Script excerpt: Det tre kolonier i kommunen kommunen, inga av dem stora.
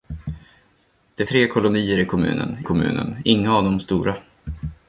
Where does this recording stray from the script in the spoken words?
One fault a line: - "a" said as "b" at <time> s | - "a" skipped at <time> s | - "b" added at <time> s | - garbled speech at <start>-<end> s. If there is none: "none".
none